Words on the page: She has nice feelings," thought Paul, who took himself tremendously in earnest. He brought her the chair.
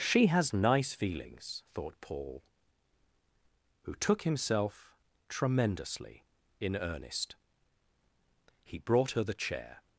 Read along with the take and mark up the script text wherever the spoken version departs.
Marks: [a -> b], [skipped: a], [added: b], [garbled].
She has nice feelings," thought Paul, who took himself tremendously in earnest. He brought her the chair.